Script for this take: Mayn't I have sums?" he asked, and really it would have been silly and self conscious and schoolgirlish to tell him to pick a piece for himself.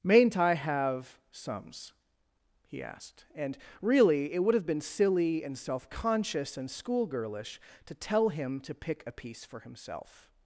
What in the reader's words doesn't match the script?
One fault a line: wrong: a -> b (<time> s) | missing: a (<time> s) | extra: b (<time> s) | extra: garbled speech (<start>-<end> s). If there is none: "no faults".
no faults